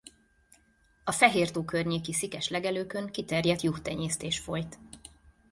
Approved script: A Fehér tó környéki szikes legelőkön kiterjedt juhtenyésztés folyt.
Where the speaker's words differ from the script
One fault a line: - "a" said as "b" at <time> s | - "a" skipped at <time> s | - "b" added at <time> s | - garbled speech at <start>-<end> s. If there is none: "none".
none